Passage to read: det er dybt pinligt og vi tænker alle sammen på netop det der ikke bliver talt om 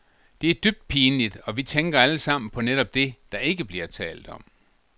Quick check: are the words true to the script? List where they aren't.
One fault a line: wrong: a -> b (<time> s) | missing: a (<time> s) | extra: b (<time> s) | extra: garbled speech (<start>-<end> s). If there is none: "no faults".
no faults